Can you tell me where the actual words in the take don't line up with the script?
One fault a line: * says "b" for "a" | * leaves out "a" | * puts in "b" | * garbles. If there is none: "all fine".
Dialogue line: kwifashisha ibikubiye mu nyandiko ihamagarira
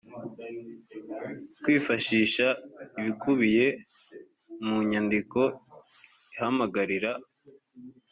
all fine